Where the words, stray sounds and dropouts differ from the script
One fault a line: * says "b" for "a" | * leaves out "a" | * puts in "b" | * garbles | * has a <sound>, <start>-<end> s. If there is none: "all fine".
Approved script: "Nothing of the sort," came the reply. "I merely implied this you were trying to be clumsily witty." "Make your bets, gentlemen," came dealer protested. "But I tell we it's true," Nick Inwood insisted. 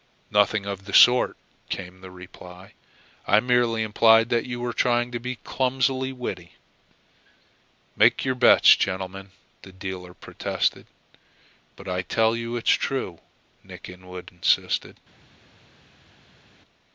* says "that" for "this"
* says "the" for "came"
* says "you" for "we"